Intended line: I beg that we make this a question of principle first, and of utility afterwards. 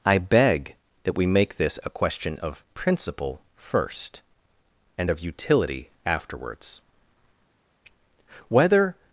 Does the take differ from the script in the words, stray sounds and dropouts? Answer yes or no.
yes